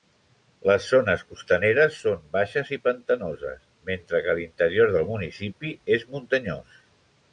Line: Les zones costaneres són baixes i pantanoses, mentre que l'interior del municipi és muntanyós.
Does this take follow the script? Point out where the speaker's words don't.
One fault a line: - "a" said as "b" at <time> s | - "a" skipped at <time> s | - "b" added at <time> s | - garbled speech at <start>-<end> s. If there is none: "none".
none